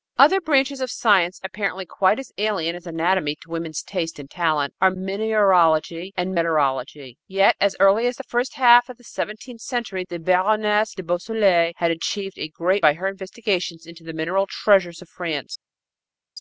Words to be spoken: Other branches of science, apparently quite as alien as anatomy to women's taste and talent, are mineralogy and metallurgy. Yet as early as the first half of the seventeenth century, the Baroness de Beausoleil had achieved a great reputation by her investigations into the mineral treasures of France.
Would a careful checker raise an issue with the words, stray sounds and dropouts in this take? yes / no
yes